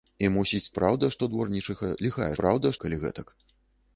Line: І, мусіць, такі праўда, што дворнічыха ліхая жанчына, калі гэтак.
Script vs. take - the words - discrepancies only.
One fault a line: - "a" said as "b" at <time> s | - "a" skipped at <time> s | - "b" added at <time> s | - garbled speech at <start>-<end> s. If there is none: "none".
- "такі" skipped at 0.7 s
- "жанчына" said as "праўда" at 2.4 s